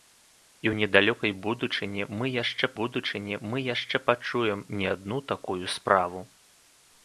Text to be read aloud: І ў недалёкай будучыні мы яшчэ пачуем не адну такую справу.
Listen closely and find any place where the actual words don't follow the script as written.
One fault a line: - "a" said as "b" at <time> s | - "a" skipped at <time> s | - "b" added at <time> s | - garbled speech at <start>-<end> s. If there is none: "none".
- "будучыні мы яшчэ" added at 2.8 s